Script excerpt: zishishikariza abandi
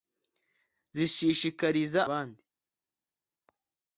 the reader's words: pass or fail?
pass